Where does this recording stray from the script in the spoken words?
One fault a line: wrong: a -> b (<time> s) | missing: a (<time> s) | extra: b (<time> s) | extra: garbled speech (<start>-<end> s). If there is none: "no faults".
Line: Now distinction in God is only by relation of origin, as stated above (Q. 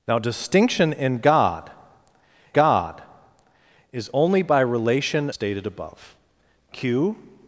extra: God (2.5 s)
missing: of origin as (5.3 s)